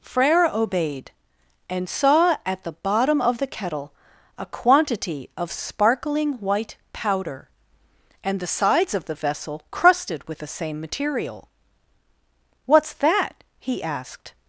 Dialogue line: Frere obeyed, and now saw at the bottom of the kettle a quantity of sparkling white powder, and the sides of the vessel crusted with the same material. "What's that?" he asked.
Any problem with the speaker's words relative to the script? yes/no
yes